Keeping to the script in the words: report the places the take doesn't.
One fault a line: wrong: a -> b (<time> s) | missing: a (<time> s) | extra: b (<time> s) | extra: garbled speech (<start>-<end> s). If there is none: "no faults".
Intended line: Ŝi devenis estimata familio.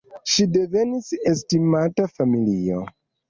no faults